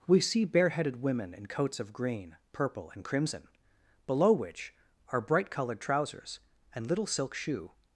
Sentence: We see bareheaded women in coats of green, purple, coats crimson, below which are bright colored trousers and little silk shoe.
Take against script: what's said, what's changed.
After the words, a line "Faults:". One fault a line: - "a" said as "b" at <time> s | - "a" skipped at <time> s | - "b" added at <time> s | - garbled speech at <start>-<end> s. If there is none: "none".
We see bareheaded women in coats of green, purple, and crimson, below which are bright colored trousers and little silk shoe.
Faults:
- "coats" said as "and" at 2.9 s